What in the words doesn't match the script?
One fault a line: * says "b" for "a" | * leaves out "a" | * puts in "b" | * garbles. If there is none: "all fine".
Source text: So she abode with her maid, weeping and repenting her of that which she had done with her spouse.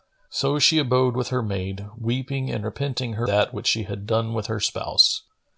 * leaves out "of"